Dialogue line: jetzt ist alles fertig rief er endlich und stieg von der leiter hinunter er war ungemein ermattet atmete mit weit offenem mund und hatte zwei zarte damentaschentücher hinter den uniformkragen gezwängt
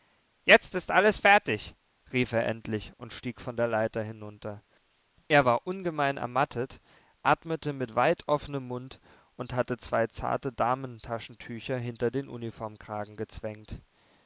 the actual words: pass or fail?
pass